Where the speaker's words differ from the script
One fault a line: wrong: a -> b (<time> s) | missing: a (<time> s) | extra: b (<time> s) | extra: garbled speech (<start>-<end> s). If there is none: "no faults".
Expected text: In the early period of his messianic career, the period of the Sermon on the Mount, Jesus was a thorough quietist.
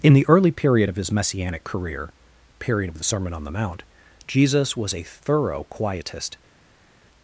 missing: the (2.1 s)